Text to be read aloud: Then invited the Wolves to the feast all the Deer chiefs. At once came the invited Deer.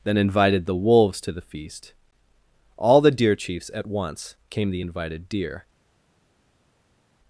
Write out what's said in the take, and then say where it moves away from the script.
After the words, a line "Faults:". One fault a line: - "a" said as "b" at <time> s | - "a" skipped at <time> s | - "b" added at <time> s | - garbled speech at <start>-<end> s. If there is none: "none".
Then invited the Wolves to the feast all the Deer chiefs. At once came the invited Deer.
Faults:
none